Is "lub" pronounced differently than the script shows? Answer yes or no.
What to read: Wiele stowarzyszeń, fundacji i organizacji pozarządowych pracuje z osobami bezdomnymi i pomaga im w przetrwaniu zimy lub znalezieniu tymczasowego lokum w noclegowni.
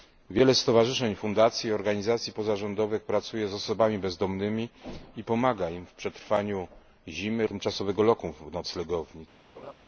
yes